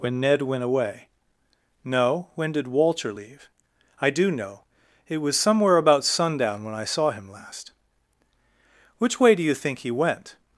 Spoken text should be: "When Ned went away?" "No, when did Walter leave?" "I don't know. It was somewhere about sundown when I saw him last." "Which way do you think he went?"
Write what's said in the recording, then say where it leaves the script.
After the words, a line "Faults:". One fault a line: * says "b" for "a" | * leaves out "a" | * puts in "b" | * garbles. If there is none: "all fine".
"When Ned went away?" "No, when did Walter leave?" "I do know. It was somewhere about sundown when I saw him last." "Which way do you think he went?"
Faults:
* says "do" for "don't"